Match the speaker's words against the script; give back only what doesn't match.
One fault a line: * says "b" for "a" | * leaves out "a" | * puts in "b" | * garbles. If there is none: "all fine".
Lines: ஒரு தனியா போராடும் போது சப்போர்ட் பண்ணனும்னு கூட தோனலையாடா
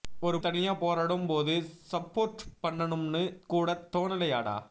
all fine